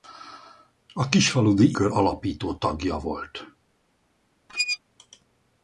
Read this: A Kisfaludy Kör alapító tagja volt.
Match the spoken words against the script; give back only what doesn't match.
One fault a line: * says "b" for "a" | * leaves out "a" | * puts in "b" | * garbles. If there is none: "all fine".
all fine